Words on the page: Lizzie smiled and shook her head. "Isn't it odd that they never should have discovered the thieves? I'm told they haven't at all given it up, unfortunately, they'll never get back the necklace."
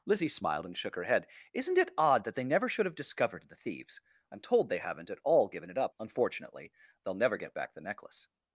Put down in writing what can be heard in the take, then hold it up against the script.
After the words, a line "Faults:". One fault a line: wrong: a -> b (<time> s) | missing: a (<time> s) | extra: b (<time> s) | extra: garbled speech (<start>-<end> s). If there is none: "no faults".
Lizzie smiled and shook her head. "Isn't it odd that they never should have discovered the thieves? I'm told they haven't at all given it up, unfortunately, they'll never get back the necklace."
Faults:
no faults